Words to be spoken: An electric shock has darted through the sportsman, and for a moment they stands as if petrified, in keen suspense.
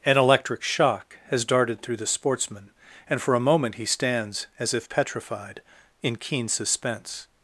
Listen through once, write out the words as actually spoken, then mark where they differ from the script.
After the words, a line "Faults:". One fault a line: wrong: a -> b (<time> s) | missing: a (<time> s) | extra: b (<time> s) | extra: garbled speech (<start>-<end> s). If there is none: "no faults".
An electric shock has darted through the sportsman, and for a moment he stands as if petrified, in keen suspense.
Faults:
wrong: they -> he (3.8 s)